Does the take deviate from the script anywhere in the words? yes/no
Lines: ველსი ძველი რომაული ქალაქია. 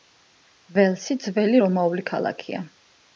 no